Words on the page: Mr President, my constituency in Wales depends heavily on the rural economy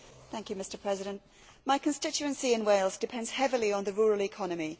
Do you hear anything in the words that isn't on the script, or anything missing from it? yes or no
no